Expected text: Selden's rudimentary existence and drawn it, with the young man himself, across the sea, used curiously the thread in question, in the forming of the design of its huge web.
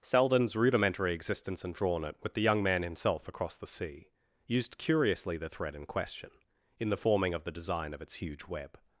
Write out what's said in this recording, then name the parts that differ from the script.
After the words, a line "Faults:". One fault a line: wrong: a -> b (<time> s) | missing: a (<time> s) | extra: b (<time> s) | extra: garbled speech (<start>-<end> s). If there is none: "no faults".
Selden's rudimentary existence and drawn it, with the young man himself, across the sea, used curiously the thread in question, in the forming of the design of its huge web.
Faults:
no faults